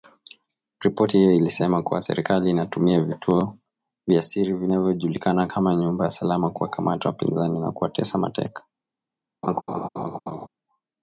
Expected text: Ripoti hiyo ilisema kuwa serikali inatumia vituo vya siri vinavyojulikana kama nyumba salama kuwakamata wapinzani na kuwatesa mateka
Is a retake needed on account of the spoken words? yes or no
no